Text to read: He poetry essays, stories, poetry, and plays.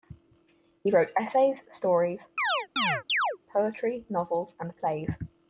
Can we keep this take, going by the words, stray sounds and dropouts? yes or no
no